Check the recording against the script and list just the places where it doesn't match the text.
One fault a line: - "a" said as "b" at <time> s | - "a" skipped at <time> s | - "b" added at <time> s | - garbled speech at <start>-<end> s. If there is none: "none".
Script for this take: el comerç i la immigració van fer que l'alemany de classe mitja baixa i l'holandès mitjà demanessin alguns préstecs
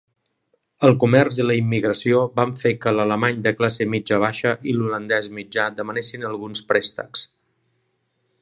none